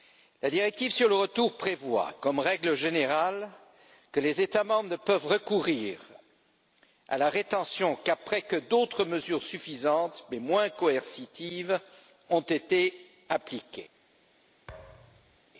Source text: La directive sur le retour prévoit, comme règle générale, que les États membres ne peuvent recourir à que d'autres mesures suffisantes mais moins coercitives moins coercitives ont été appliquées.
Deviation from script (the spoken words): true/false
true